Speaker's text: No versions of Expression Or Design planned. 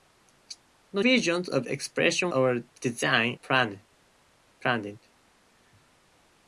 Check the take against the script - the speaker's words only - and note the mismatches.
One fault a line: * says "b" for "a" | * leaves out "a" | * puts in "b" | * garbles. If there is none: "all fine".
all fine